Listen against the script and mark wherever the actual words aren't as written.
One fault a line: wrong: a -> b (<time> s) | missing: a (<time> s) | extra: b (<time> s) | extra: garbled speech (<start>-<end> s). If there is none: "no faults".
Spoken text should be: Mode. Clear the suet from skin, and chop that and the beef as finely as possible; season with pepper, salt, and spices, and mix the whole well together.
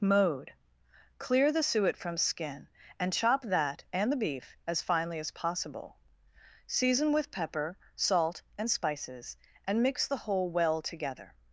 no faults